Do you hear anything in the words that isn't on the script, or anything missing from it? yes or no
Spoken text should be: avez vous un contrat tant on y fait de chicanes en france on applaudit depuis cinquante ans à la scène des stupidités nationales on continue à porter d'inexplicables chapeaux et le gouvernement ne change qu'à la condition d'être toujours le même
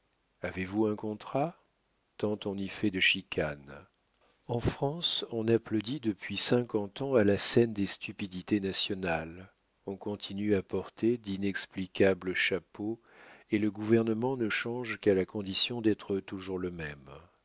no